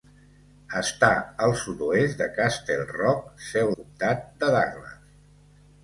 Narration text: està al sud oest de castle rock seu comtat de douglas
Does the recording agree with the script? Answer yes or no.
yes